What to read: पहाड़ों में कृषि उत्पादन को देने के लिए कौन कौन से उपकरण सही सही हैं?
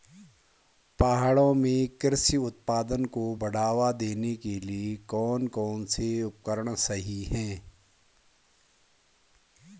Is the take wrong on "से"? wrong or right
right